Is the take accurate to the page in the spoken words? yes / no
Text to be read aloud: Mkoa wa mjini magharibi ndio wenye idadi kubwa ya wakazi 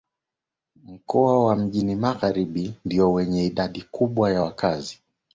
yes